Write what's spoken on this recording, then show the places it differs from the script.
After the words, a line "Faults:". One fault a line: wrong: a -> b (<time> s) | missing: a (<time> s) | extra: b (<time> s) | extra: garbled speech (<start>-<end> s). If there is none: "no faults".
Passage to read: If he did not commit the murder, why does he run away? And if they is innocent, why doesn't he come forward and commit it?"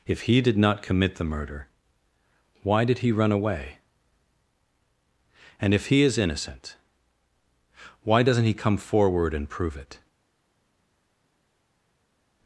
If he did not commit the murder, why did he run away? And if he is innocent, why doesn't he come forward and prove it?"
Faults:
wrong: does -> did (2.9 s)
wrong: they -> he (5.9 s)
wrong: commit -> prove (9.5 s)